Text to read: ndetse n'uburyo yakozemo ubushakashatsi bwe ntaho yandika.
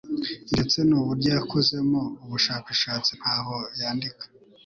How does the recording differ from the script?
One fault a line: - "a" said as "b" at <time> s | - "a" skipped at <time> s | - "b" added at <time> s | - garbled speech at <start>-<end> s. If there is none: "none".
- "bwe" skipped at 3.1 s